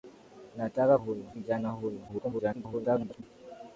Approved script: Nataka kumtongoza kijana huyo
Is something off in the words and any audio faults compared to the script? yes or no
yes